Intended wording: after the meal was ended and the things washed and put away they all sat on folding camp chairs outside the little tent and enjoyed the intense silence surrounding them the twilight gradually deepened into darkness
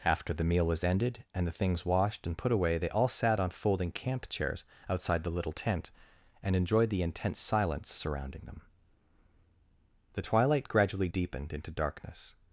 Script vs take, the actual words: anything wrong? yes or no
no